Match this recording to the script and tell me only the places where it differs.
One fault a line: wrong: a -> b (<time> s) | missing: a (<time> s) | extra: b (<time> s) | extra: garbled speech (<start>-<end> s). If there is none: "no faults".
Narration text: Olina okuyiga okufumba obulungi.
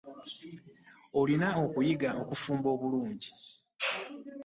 no faults